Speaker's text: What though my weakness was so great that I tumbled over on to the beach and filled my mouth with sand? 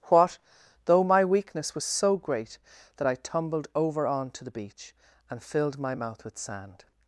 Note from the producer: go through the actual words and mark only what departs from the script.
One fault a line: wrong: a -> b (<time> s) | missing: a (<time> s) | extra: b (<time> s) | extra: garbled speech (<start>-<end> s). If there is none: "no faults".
no faults